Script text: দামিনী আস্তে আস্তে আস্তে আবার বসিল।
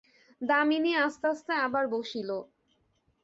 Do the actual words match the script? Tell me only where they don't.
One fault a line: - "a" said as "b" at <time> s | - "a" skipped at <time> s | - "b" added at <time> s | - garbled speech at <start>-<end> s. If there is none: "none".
- "আস্তে" skipped at 1.5 s